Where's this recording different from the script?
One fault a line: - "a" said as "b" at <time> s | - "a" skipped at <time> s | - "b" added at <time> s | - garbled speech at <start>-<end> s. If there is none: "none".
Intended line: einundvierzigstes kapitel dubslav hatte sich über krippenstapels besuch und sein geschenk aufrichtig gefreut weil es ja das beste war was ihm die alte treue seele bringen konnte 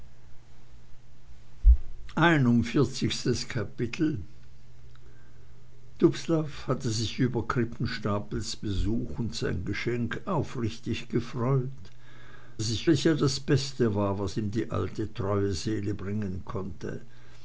- "weil" said as "sich" at 12.6 s